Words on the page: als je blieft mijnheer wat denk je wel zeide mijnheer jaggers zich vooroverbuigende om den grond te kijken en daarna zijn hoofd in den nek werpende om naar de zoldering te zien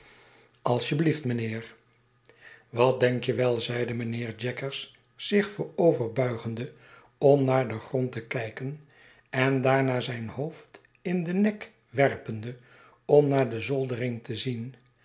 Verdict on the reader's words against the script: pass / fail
fail